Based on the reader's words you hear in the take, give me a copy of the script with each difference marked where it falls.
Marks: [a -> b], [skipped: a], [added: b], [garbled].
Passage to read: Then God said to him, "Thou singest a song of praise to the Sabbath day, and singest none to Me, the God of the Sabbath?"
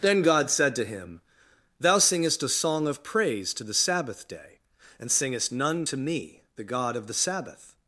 Then God said to him, "Thou singest a song of praise to the Sabbath day, and singest none to Me, the God of the Sabbath?"